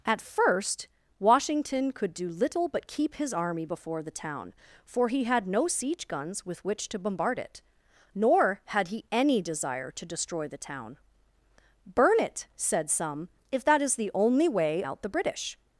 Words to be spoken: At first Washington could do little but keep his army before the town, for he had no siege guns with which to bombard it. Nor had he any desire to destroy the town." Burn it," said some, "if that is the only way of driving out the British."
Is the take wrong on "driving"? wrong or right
wrong